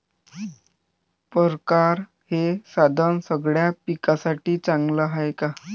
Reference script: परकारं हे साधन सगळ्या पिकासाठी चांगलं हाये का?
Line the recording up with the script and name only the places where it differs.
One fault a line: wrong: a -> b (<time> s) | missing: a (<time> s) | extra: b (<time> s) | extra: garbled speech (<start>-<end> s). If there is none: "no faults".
no faults